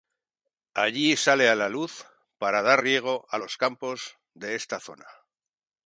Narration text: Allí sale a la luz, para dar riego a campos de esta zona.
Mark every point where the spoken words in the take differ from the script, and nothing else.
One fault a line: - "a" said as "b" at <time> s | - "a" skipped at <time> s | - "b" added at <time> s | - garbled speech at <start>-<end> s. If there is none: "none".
- "los" added at 3.4 s